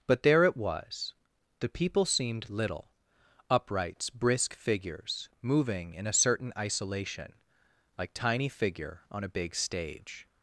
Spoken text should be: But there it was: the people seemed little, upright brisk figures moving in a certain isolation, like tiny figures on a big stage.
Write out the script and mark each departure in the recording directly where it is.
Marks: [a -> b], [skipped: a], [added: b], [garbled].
But there it was: the people seemed little, [upright -> uprights] brisk figures moving in a certain isolation, like tiny [figures -> figure] on a big stage.